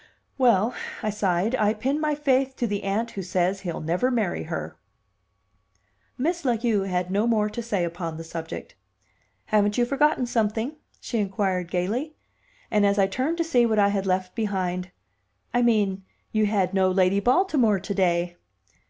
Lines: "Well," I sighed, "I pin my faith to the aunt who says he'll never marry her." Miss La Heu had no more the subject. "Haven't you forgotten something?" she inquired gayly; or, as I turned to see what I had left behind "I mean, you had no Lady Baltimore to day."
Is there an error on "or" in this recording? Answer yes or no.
yes